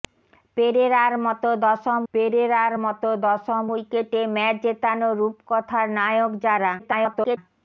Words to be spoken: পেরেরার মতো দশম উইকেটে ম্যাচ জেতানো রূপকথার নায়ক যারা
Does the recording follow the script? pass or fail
fail